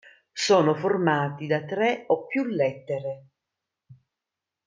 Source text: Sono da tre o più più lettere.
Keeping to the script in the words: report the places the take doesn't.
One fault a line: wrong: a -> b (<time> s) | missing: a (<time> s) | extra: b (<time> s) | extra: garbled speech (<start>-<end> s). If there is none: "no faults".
extra: formati (0.7 s)
missing: più (2.4 s)